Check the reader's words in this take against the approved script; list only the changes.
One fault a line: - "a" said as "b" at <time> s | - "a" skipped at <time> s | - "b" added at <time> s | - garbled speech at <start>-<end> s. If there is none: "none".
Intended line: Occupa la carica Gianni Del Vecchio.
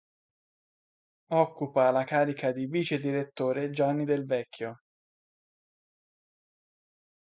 - "di vicedirettore" added at 2.5 s